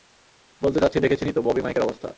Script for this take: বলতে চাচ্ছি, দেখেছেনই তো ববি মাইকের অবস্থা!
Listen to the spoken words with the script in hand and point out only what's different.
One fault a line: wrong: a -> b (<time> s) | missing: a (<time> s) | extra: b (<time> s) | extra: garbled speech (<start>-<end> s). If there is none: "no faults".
no faults